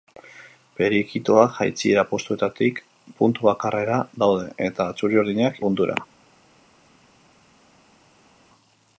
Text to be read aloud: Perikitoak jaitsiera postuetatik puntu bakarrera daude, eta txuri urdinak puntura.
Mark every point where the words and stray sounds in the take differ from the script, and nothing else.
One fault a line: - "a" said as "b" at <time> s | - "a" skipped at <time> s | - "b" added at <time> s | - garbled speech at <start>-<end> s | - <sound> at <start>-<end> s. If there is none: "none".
none